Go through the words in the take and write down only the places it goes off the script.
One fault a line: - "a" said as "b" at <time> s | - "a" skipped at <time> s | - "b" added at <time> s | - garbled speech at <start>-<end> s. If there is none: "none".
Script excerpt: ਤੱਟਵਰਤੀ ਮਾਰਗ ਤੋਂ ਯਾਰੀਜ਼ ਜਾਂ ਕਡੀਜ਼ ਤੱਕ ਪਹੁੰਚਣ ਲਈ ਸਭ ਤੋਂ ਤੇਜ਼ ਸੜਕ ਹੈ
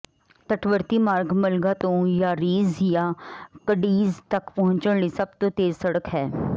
- "ਮਲਗਾ" added at 1.4 s